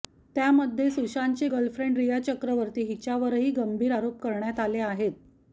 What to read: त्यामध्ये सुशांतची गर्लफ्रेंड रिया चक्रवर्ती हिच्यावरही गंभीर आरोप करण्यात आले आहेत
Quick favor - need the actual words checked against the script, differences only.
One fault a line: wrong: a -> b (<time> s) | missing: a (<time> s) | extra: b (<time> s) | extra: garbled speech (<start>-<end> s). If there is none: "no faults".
no faults